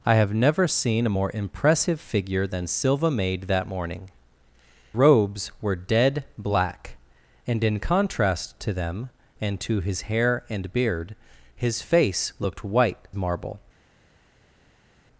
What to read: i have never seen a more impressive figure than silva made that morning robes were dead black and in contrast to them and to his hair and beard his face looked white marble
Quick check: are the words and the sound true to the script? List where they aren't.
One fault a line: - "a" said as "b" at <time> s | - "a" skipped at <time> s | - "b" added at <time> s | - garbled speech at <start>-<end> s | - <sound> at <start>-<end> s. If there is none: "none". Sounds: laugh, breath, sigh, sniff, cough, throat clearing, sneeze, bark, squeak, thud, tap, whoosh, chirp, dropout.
none